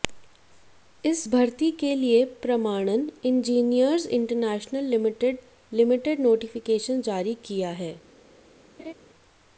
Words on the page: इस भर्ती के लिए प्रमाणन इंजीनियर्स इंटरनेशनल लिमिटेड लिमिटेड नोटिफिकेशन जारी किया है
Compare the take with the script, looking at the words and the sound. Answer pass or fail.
fail